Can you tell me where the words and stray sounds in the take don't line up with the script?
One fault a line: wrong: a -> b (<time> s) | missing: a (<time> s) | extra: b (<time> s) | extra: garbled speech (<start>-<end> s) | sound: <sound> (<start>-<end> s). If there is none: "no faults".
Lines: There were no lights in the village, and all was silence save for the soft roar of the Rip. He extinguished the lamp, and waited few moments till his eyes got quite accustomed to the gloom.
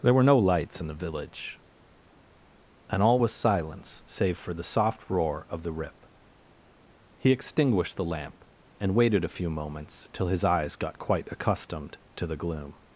extra: a (9.2 s)